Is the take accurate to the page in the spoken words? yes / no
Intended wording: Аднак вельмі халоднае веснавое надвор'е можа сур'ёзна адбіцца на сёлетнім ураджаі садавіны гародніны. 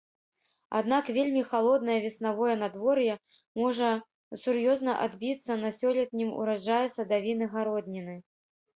yes